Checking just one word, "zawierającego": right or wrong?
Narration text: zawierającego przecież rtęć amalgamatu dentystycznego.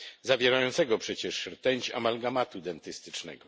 right